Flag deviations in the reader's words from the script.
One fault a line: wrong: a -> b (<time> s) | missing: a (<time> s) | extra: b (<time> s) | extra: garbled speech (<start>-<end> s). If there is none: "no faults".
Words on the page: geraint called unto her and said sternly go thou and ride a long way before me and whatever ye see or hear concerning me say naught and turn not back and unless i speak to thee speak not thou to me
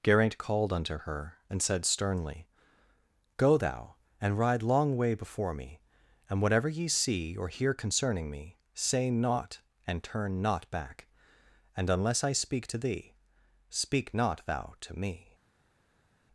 missing: a (4.6 s)